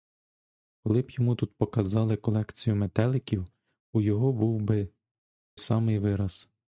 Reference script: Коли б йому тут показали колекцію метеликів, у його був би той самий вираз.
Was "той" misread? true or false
true